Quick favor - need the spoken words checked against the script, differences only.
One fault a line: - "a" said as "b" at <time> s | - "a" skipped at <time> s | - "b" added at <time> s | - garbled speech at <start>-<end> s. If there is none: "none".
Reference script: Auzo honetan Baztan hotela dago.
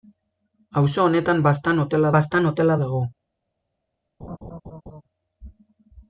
- "Baztan hotela" added at 2.2 s